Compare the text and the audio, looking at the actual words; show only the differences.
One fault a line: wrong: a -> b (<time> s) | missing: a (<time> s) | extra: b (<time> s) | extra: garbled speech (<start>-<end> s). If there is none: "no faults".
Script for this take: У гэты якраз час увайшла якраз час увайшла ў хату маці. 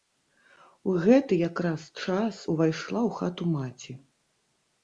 missing: якраз час увайшла (3.0 s)